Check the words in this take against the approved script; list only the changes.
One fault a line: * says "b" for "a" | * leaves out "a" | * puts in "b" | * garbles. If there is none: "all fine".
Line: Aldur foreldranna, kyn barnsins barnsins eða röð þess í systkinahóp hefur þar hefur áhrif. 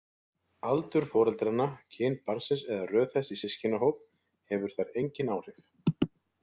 * leaves out "barnsins"
* says "engin" for "hefur"